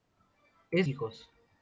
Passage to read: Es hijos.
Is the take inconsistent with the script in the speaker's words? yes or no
no